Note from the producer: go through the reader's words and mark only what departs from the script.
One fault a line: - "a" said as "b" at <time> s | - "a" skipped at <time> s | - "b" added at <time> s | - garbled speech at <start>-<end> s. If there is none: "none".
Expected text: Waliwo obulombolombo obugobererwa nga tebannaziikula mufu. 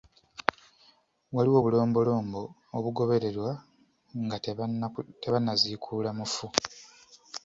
none